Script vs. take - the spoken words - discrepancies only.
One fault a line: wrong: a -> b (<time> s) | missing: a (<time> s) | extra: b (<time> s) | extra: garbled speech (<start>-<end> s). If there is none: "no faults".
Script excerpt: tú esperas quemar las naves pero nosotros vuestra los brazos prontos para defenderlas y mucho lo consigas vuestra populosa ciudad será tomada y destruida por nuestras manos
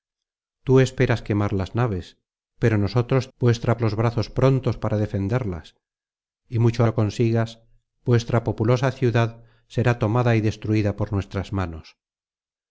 no faults